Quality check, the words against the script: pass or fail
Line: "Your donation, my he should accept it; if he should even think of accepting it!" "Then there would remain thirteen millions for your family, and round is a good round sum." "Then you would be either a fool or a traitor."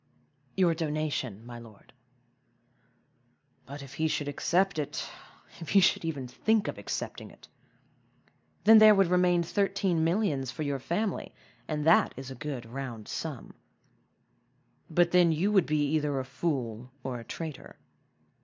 fail